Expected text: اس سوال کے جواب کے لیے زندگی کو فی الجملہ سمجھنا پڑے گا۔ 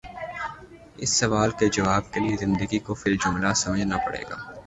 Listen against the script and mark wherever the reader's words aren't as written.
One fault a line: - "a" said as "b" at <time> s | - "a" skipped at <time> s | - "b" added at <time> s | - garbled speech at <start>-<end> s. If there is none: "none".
none